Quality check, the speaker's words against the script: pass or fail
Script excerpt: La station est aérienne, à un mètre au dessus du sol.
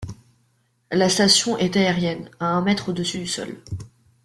pass